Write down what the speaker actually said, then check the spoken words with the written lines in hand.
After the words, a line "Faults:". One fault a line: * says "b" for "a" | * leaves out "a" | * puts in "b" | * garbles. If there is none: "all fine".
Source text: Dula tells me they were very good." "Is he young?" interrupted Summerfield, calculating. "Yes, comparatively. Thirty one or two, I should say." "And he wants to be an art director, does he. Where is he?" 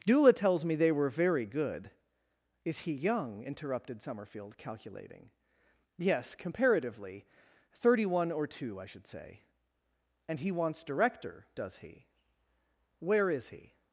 Dula tells me they were very good." "Is he young?" interrupted Summerfield, calculating. "Yes, comparatively. Thirty one or two, I should say." "And he wants director, does he. Where is he?"
Faults:
* leaves out "to be an art"